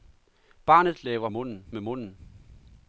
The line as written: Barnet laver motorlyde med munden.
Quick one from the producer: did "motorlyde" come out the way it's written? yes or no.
no